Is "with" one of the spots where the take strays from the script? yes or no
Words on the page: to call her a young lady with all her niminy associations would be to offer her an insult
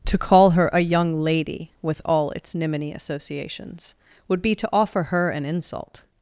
no